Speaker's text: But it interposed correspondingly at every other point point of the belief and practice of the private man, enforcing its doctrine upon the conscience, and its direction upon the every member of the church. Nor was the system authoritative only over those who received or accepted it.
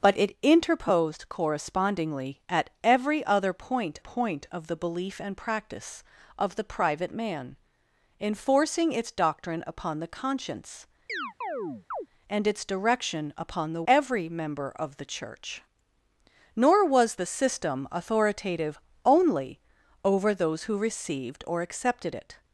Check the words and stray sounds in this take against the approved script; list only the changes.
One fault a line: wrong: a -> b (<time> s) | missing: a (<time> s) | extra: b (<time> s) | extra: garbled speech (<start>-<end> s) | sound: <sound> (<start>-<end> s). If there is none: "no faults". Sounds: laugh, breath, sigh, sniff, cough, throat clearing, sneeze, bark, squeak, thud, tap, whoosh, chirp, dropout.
sound: chirp (11.1-12.1 s)